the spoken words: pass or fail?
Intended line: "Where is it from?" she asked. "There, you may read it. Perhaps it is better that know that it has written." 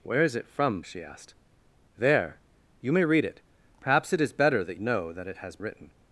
pass